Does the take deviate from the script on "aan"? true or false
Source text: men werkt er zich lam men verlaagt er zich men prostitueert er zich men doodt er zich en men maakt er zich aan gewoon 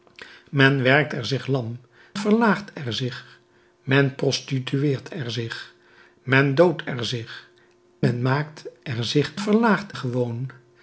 true